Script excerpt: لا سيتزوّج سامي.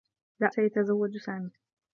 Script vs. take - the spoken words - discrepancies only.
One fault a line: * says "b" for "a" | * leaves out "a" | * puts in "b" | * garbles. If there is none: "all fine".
all fine